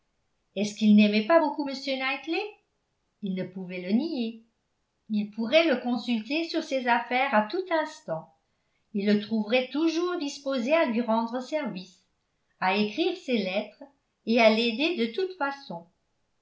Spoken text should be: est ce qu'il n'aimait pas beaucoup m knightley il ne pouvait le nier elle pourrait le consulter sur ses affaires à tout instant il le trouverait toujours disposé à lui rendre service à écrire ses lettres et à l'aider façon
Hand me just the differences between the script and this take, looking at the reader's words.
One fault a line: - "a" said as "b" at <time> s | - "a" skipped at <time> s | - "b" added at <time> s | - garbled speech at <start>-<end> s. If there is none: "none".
- "elle" said as "il" at 5.1 s
- "de toute" added at 15.0 s